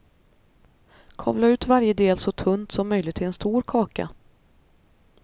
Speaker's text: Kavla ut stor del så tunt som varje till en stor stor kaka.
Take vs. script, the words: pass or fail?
fail